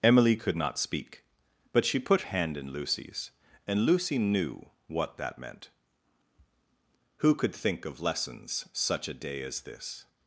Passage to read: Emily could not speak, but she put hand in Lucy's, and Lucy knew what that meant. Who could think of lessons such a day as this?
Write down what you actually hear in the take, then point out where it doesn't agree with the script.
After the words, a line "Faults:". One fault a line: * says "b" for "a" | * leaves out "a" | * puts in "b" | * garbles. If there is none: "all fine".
Emily could not speak, but she put hand in Lucy's, and Lucy knew what that meant. Who could think of lessons such a day as this?
Faults:
all fine